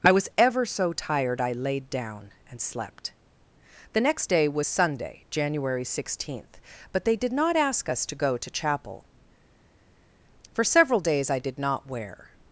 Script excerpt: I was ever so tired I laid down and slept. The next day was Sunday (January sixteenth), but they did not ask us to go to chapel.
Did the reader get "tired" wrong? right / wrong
right